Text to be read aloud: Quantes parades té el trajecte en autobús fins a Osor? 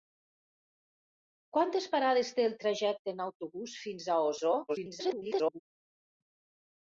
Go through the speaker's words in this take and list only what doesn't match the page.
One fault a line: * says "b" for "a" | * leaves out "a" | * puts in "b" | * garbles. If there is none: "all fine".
* garbles